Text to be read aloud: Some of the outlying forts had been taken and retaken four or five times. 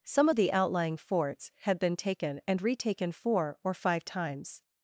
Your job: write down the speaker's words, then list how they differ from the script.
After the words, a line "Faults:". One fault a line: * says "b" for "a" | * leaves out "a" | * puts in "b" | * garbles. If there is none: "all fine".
Some of the outlying forts had been taken and retaken four or five times.
Faults:
all fine